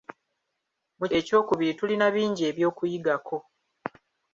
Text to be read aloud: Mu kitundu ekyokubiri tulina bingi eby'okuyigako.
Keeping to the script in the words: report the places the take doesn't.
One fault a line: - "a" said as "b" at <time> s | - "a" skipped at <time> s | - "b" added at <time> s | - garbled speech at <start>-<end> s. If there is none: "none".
- "kitundu" skipped at 1.1 s